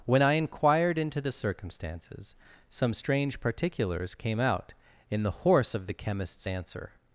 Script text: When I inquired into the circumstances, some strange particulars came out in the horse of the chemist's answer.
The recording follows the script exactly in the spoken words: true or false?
true